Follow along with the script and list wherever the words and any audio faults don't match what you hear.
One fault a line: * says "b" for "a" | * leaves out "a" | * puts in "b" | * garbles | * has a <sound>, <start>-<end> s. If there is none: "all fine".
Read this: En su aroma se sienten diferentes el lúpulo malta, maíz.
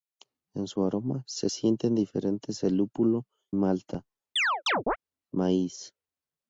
* has a chirp, 4.4-5.0 s